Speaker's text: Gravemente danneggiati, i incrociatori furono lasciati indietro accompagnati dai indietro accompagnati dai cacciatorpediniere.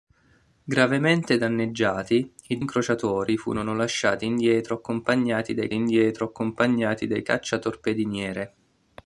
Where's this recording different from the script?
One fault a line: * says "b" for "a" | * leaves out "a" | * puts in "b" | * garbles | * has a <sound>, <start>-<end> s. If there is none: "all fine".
all fine